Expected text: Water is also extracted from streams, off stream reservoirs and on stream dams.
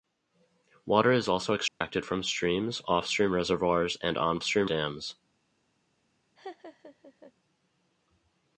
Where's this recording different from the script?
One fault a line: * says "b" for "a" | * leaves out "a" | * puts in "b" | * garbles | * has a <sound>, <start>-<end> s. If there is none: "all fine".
* has a dropout, 1.7-1.8 s
* has a laugh, 6.4-7.3 s